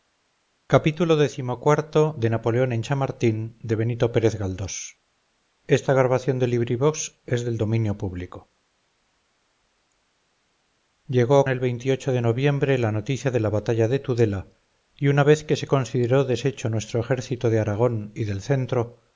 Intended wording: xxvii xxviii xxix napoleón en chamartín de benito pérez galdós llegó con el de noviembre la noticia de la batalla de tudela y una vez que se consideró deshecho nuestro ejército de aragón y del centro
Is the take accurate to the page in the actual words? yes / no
no